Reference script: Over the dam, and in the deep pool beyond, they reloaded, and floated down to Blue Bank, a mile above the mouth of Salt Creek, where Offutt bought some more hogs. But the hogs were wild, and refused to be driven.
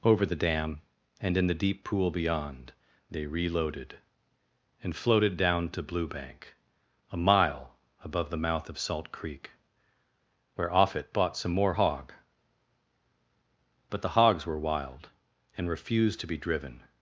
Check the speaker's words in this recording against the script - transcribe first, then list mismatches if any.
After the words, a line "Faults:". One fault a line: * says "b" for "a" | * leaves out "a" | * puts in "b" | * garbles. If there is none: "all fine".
Over the dam, and in the deep pool beyond, they reloaded, and floated down to Blue Bank, a mile above the mouth of Salt Creek, where Offutt bought some more hog. But the hogs were wild, and refused to be driven.
Faults:
* says "hog" for "hogs"